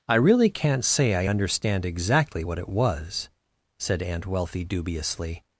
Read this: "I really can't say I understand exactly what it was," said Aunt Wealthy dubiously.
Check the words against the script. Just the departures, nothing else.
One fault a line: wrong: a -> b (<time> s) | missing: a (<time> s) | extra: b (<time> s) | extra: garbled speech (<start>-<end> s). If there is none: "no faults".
no faults